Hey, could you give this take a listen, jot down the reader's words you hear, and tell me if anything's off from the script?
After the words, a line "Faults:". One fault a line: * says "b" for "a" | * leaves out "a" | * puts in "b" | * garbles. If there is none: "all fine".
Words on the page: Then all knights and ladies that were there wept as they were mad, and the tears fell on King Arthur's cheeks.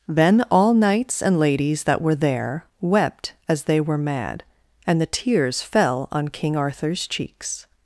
Then all knights and ladies that were there wept as they were mad, and the tears fell on King Arthur's cheeks.
Faults:
all fine